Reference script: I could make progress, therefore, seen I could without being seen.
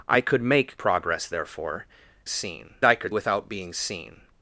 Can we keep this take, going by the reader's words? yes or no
yes